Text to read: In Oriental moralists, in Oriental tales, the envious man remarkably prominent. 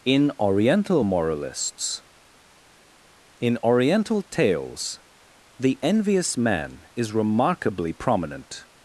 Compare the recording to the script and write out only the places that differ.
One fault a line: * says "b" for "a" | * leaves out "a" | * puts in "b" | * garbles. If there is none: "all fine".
* puts in "is"